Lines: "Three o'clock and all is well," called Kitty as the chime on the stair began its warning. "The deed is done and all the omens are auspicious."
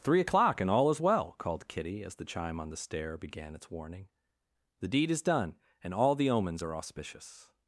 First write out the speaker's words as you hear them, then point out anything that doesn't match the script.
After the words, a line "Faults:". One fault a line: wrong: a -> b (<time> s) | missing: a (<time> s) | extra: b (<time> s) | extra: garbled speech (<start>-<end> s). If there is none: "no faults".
"Three o'clock and all is well," called Kitty as the chime on the stair began its warning. "The deed is done and all the omens are auspicious."
Faults:
no faults